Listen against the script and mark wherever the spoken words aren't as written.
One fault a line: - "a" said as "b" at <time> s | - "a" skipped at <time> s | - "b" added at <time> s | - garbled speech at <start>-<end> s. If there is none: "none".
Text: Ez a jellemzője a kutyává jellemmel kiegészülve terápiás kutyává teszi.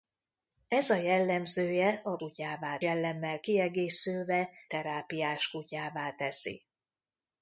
none